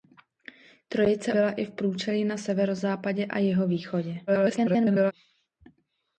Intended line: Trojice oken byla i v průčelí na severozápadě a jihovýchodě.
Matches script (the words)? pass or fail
fail